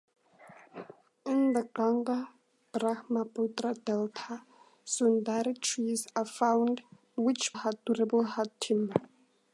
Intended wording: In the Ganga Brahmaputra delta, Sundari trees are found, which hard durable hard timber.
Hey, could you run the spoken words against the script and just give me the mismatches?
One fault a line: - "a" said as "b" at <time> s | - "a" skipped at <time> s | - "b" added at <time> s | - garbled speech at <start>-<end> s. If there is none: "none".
none